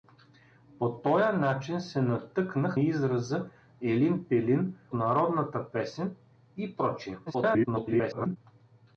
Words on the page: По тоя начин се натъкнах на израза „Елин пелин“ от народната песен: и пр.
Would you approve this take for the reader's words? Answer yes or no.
no